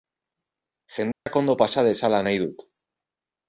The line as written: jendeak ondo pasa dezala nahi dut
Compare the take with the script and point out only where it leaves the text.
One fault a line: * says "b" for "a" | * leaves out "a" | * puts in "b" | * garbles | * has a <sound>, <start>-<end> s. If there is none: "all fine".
* has a dropout, 1.1-1.3 s